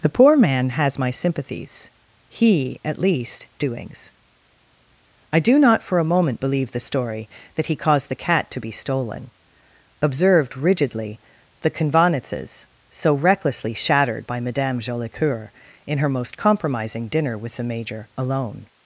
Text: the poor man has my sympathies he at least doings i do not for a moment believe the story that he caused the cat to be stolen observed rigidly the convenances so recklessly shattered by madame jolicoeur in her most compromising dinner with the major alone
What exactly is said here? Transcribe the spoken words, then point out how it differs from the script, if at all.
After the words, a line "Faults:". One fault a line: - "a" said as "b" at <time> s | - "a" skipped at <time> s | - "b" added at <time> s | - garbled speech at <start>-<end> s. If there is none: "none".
the poor man has my sympathies he at least doings i do not for a moment believe the story that he caused the cat to be stolen observed rigidly the convenances so recklessly shattered by madame jolicoeur in her most compromising dinner with the major alone
Faults:
none